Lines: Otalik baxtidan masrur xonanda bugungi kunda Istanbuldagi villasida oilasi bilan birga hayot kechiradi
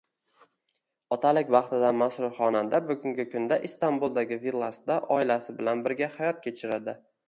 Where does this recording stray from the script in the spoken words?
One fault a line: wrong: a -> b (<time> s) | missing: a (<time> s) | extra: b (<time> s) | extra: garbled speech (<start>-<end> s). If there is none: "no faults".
no faults